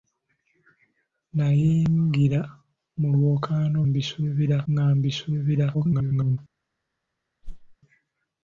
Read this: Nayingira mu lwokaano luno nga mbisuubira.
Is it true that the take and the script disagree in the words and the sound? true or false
true